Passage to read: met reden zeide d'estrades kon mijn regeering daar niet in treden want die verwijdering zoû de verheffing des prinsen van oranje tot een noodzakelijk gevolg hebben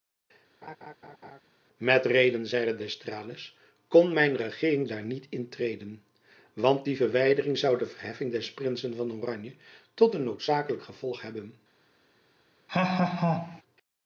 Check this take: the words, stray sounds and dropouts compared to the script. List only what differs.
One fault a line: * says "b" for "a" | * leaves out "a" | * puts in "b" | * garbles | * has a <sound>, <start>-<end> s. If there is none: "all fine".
* has a laugh, 0.6-1.4 s
* has a laugh, 12.7-13.6 s